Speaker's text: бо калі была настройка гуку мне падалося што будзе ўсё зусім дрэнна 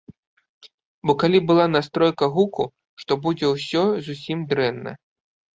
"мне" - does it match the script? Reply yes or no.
no